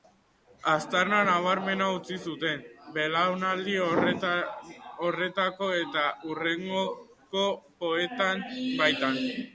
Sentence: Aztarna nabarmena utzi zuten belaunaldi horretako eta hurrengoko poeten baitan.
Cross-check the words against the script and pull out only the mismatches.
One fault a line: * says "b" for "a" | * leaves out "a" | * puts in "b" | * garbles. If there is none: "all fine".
all fine